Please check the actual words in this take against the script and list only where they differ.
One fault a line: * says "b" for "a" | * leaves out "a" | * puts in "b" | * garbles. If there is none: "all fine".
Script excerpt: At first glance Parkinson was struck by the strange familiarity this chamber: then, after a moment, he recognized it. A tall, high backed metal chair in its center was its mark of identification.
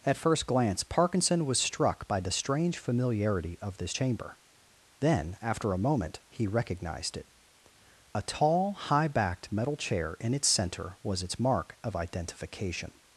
* puts in "of"